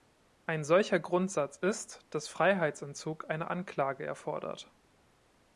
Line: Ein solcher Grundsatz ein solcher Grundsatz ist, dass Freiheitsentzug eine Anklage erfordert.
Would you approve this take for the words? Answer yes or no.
no